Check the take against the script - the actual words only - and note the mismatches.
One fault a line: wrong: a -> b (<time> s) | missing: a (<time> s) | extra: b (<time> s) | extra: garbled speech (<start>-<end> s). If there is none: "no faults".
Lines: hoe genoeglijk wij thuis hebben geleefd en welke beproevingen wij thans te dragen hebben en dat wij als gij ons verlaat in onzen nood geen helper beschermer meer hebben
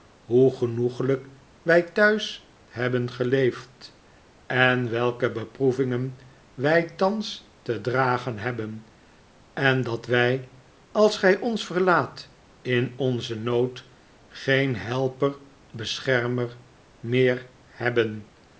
no faults